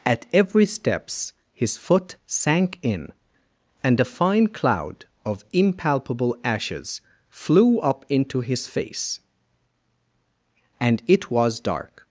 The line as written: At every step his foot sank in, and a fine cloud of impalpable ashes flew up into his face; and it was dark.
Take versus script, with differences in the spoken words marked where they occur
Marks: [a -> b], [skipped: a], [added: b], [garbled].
At every [step -> steps] his foot sank in, and a fine cloud of impalpable ashes flew up into his face; and it was dark.